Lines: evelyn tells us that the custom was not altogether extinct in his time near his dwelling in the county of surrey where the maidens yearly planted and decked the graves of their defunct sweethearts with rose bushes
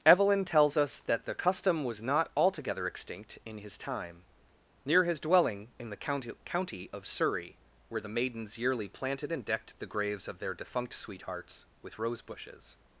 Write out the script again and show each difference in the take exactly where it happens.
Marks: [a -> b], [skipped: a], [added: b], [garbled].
evelyn tells us that the custom was not altogether extinct in his time near his dwelling in the county [added: county] of surrey where the maidens yearly planted and decked the graves of their defunct sweethearts with rose bushes